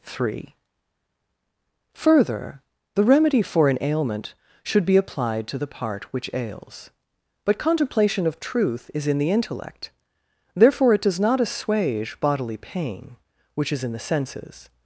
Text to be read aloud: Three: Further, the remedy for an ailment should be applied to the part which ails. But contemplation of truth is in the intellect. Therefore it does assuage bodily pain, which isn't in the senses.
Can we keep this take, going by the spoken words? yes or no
no